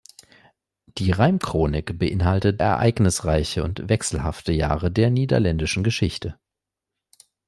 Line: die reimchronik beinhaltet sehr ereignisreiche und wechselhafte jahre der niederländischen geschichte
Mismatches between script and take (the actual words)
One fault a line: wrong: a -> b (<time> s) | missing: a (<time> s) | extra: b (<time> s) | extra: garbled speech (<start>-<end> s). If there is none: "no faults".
missing: sehr (2.6 s)